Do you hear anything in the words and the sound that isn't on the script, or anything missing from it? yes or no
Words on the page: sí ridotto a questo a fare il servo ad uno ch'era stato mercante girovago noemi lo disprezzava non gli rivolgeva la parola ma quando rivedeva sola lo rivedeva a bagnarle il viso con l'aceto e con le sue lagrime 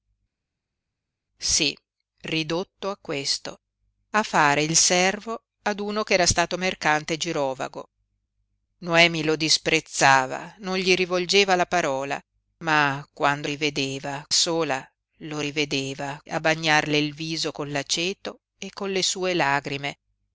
no